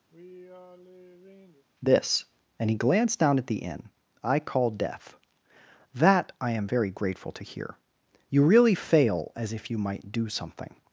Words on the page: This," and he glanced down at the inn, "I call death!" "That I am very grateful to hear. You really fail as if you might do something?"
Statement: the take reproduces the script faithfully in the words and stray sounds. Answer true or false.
false